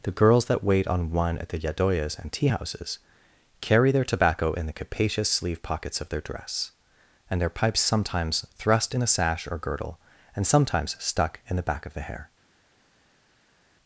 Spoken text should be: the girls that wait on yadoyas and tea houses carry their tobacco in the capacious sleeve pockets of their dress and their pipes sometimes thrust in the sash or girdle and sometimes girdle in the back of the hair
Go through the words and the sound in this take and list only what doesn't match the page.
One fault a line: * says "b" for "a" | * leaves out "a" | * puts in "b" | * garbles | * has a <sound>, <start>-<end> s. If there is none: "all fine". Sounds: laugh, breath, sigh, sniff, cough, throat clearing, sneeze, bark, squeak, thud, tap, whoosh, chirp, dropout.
* puts in "one at the"
* says "stuck" for "girdle"